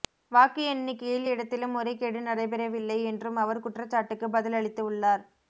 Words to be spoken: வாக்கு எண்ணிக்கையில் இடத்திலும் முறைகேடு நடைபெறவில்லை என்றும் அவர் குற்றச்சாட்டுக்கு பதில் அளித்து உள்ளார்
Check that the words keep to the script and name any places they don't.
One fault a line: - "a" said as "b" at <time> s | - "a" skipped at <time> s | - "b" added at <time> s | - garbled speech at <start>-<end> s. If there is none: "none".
none